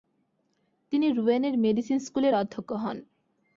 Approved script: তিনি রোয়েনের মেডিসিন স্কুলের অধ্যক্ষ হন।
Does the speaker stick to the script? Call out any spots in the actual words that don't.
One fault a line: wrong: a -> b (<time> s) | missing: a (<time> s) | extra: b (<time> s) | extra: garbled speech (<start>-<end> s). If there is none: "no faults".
no faults